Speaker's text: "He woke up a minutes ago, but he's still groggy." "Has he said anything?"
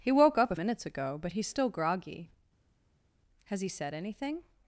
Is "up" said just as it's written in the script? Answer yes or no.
yes